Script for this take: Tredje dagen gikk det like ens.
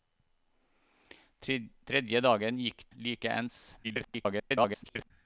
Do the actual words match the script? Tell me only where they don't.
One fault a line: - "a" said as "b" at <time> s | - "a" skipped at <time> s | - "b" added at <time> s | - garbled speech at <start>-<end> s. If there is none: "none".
- "det" skipped at 2.9 s
- garbled speech at 3.8-5.1 s